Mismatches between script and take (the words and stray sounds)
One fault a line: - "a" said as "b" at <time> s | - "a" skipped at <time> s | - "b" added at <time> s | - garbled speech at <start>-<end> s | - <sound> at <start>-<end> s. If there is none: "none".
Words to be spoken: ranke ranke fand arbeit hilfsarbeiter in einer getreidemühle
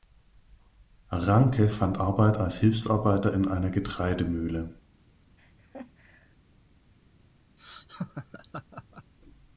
- "ranke" skipped at 1.7 s
- "als" added at 2.4 s
- laugh at 5.4-6.4 s
- laugh at 7.6-9.1 s